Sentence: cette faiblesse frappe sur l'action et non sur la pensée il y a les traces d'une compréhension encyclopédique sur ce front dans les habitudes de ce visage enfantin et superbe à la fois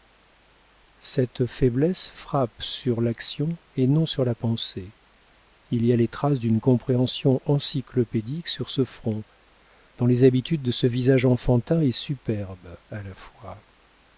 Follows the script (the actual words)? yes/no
yes